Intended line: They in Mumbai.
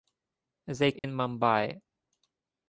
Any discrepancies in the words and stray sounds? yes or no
yes